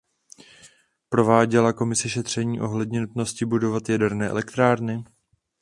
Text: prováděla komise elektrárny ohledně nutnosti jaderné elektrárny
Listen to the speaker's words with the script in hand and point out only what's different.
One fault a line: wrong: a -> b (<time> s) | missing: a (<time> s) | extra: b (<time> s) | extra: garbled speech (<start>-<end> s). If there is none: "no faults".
wrong: elektrárny -> šetření (2.1 s)
extra: budovat (3.5 s)